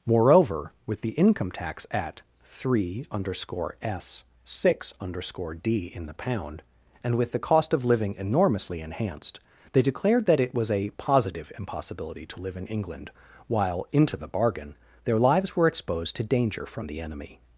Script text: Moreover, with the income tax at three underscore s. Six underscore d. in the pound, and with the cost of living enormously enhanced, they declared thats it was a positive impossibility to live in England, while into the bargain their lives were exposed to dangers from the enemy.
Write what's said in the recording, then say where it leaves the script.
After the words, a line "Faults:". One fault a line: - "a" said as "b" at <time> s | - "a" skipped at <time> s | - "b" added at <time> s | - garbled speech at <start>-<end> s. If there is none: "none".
Moreover, with the income tax at three underscore s. Six underscore d. in the pound, and with the cost of living enormously enhanced, they declared that it was a positive impossibility to live in England, while into the bargain their lives were exposed to danger from the enemy.
Faults:
- "thats" said as "that" at 10.2 s
- "dangers" said as "danger" at 16.2 s